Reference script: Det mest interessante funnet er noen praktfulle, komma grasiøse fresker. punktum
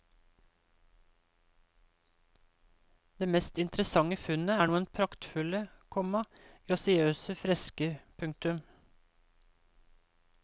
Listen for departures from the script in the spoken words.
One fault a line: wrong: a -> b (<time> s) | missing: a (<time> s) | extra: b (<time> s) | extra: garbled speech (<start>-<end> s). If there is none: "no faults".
no faults